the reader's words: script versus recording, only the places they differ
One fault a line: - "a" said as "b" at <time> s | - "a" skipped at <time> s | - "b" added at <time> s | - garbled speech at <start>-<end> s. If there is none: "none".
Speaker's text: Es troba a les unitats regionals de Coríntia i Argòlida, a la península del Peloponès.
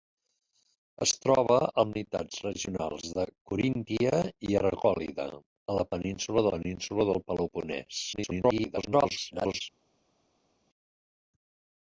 - "les" skipped at 1.8 s
- "península" added at 6.6 s
- garbled speech at 8.1-9.6 s